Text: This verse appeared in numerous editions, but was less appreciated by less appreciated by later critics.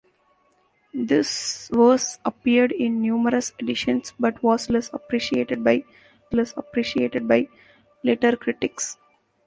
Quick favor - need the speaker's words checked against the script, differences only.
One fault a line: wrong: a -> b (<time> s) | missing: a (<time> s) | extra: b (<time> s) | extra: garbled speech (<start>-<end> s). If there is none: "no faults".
no faults